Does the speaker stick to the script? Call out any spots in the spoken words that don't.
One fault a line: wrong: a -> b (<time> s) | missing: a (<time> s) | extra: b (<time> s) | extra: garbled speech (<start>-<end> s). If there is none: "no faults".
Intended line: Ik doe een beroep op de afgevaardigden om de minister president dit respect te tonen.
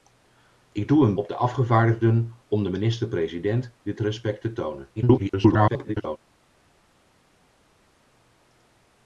missing: beroep (1.1 s)
extra: garbled speech (5.0-6.2 s)